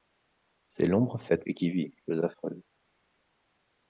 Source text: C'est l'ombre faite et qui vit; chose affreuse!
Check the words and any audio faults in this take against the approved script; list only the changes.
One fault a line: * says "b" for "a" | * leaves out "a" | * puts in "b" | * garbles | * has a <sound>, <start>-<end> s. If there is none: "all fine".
all fine